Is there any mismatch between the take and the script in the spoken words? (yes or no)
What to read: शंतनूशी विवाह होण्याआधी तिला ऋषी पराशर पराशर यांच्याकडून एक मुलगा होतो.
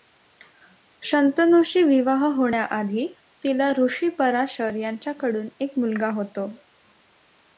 yes